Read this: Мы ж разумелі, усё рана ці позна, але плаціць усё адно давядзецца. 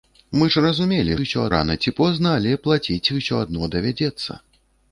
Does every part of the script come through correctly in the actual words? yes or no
yes